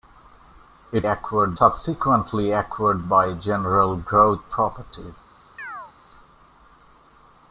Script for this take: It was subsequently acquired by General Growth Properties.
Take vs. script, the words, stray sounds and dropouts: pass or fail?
fail